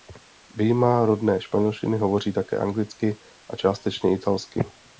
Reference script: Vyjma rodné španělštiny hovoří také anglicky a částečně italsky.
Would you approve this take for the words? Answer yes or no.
yes